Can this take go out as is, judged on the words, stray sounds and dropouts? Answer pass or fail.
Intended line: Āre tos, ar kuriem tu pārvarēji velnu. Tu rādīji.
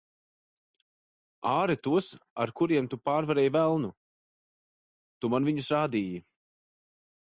fail